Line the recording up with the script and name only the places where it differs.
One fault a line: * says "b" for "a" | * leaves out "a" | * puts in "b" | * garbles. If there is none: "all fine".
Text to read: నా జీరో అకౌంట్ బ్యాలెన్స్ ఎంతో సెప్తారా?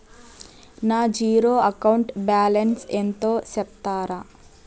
all fine